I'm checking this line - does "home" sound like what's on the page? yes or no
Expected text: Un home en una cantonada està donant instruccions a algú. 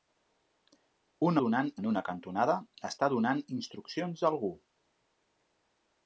no